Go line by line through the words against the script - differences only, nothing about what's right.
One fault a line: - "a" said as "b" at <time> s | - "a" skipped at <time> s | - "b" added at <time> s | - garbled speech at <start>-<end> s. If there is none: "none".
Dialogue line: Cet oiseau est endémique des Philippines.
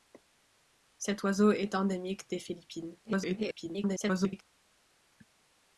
- garbled speech at 3.0-4.4 s